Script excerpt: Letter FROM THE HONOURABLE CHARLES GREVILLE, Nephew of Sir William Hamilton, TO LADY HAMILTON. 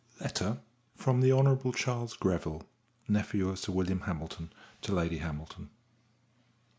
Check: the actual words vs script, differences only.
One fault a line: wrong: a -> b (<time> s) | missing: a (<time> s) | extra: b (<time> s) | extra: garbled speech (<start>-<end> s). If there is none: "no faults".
no faults